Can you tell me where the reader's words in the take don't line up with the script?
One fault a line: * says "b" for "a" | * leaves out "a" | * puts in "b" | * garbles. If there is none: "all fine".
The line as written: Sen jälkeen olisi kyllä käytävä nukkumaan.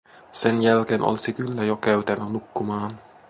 * puts in "jo"